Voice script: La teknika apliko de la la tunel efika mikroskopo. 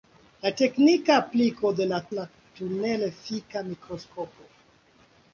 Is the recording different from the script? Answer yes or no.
no